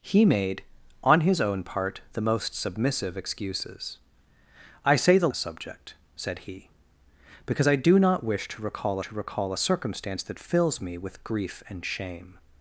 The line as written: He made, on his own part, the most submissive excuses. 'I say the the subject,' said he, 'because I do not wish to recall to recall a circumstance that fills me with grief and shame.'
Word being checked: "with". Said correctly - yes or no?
yes